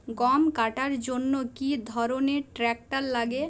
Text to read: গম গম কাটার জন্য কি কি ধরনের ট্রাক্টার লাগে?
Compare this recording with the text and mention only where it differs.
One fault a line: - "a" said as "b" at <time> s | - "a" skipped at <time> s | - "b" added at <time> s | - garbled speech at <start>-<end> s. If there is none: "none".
- "গম" skipped at 0.4 s
- "কি" skipped at 1.7 s